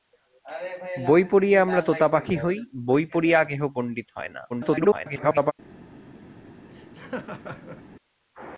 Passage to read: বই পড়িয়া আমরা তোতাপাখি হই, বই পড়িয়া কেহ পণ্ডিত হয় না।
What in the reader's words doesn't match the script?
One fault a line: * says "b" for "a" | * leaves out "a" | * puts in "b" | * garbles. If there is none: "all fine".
* garbles